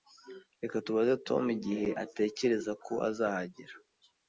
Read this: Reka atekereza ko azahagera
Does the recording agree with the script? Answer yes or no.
no